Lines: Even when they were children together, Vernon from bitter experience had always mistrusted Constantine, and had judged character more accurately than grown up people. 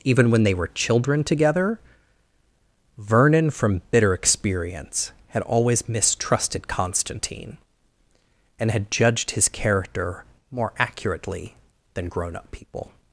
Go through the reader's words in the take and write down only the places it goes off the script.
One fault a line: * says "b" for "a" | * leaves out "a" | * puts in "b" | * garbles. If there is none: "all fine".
* puts in "his"